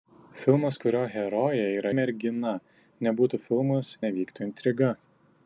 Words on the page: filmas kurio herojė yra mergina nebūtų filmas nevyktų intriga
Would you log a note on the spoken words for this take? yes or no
no